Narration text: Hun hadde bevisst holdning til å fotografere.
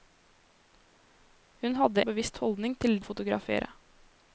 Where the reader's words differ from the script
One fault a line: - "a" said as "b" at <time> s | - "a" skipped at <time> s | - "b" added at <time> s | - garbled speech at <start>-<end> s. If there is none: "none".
none